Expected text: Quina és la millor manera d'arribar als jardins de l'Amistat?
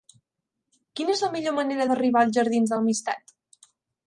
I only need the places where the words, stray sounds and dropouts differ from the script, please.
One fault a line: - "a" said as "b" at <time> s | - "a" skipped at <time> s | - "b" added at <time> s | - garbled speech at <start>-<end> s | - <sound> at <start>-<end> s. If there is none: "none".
none